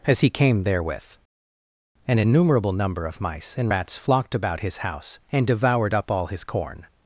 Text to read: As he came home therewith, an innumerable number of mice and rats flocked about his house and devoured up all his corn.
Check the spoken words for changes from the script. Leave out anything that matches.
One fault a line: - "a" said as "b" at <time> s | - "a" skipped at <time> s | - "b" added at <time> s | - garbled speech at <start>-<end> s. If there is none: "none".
- "home" skipped at 0.6 s